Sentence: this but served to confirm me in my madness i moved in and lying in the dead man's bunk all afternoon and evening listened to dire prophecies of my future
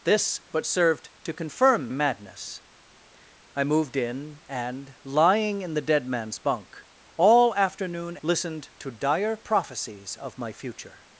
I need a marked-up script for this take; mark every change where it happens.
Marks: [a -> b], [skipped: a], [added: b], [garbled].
this but served to confirm [skipped: me in my] madness i moved in and lying in the dead man's bunk all afternoon [skipped: and evening] listened to dire prophecies of my future